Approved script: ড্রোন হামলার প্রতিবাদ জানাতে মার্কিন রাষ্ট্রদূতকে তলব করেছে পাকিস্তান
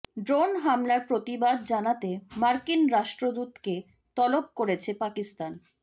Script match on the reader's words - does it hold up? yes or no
yes